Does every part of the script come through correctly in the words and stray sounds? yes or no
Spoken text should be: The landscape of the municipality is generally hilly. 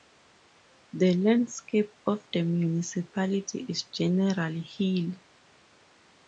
yes